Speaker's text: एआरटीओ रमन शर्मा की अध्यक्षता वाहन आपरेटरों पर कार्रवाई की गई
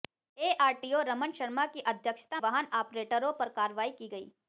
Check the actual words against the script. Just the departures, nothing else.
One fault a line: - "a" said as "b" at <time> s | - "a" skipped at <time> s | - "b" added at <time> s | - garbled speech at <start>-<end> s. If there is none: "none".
none